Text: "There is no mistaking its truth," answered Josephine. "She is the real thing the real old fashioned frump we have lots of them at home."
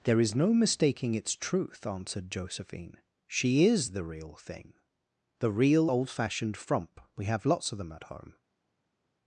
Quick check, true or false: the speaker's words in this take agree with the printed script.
true